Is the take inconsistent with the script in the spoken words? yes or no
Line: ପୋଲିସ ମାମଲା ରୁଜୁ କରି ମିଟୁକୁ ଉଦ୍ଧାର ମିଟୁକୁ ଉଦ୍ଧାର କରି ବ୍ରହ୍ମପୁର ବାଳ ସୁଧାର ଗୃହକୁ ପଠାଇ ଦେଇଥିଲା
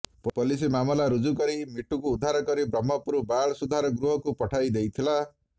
yes